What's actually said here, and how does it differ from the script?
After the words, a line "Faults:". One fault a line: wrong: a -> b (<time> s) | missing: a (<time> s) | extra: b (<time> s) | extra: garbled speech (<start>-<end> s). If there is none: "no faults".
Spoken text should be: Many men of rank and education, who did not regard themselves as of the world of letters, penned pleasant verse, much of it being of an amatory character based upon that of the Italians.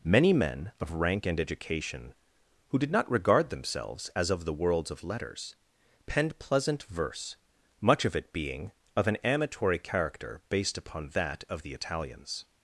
Many men of rank and education, who did not regard themselves as of the worlds of letters, penned pleasant verse, much of it being of an amatory character based upon that of the Italians.
Faults:
wrong: world -> worlds (4.5 s)